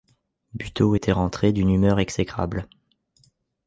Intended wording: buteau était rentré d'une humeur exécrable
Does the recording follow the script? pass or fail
pass